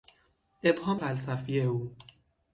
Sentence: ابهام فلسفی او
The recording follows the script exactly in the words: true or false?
true